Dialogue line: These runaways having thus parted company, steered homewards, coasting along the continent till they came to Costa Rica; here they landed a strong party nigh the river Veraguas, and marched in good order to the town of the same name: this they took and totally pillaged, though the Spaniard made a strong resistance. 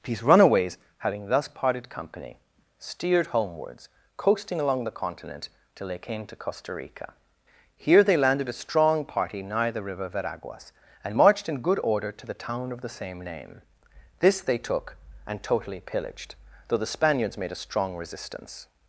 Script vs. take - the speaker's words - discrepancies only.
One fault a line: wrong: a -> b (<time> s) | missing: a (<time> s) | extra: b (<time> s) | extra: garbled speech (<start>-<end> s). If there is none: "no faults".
wrong: Spaniard -> Spaniards (17.0 s)